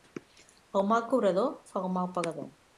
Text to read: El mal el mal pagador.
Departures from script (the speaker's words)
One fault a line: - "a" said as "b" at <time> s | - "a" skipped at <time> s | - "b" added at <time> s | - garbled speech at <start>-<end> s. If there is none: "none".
- "cobrador fa" added at 1.1 s